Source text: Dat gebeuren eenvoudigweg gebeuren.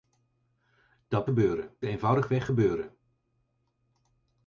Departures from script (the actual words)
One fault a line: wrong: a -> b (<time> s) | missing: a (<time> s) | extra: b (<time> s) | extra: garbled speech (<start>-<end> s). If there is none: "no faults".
no faults